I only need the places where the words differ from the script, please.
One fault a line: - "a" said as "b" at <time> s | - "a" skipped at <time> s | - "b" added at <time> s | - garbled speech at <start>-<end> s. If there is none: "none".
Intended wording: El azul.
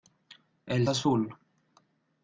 none